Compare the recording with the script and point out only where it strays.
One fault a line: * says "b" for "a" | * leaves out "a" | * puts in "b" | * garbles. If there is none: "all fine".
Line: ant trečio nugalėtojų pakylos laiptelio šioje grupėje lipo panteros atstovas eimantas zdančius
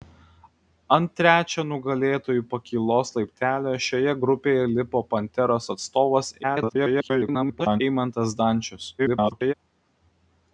* garbles
* garbles